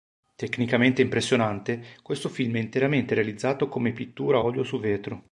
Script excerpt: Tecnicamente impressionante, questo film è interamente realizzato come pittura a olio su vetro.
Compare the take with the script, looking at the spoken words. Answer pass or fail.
pass